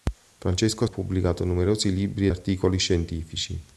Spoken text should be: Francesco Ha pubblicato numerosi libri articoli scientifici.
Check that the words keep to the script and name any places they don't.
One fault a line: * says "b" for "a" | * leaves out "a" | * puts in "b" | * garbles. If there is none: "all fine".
all fine